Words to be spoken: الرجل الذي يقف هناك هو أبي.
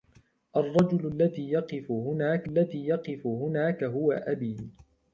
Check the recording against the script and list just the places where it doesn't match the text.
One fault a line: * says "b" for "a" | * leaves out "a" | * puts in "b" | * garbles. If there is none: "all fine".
* puts in "الذي يقف هناك"